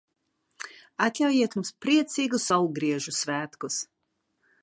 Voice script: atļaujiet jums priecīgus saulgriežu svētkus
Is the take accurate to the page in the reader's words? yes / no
yes